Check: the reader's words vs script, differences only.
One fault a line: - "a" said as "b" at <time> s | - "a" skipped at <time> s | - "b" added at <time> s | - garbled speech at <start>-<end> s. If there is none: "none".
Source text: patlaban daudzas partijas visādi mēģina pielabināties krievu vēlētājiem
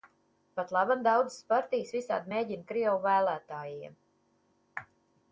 - "pielabināties" skipped at 2.7 s